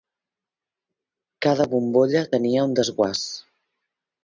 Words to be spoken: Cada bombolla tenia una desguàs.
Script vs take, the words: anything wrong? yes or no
yes